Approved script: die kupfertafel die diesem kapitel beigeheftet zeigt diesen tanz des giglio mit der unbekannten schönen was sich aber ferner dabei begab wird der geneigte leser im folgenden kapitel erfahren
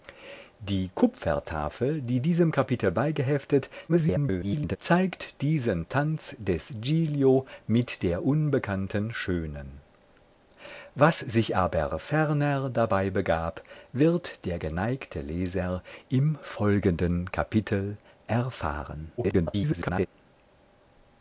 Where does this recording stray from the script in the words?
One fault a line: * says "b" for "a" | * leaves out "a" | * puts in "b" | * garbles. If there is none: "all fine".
* garbles
* garbles